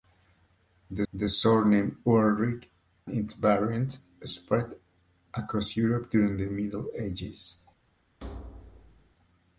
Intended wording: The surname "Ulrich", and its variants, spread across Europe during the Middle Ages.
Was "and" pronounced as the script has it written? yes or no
no